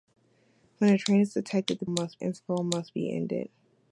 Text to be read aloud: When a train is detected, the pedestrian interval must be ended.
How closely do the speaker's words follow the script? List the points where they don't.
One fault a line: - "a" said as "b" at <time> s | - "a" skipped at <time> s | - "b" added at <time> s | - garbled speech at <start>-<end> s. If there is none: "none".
- "pedestrian" said as "must" at 1.9 s